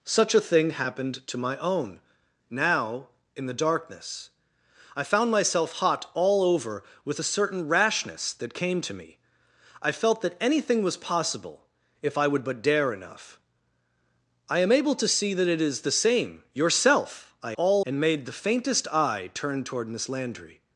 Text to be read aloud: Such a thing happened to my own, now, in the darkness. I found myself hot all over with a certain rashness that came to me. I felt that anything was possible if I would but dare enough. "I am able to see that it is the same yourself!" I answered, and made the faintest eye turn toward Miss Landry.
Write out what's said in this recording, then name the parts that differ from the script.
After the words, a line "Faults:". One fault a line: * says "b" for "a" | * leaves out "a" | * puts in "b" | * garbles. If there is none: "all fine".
Such a thing happened to my own, now, in the darkness. I found myself hot all over with a certain rashness that came to me. I felt that anything was possible if I would but dare enough. "I am able to see that it is the same yourself!" I all, and made the faintest eye turn toward Miss Landry.
Faults:
* says "all" for "answered"